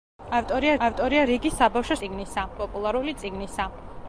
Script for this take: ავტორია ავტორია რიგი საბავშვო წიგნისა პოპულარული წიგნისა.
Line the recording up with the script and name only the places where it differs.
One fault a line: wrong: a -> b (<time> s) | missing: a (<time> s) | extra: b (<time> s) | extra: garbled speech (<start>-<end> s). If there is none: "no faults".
no faults